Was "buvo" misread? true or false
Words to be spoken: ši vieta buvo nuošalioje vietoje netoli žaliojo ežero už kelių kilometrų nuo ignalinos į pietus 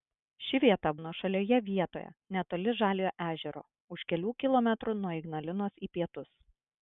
true